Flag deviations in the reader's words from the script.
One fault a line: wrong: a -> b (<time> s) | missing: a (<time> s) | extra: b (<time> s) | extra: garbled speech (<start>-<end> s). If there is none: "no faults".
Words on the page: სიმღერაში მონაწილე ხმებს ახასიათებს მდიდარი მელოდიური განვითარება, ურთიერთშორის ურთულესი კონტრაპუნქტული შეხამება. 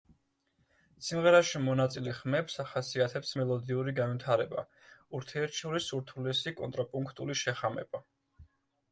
missing: მდიდარი (3.4 s)